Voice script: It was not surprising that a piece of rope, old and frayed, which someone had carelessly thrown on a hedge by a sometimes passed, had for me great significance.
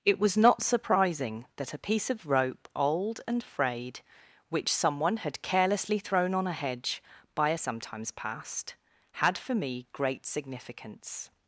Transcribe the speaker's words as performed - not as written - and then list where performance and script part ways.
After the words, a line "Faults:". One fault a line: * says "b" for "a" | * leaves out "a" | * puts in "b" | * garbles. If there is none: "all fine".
It was not surprising that a piece of rope, old and frayed, which someone had carelessly thrown on a hedge by a sometimes passed, had for me great significance.
Faults:
all fine